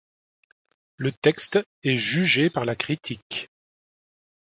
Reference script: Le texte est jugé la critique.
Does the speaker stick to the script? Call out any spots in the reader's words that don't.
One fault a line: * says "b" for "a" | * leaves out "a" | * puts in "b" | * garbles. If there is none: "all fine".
* puts in "par"